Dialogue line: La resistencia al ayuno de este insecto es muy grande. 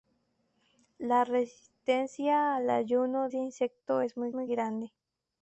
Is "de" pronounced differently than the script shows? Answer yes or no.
yes